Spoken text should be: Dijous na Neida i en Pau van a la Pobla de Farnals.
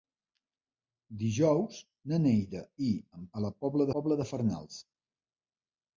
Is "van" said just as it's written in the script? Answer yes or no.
no